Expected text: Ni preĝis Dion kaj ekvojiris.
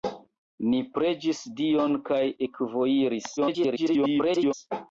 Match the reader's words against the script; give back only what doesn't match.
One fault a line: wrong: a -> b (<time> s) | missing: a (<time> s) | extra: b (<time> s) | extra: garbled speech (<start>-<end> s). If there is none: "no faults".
extra: garbled speech (3.4-4.5 s)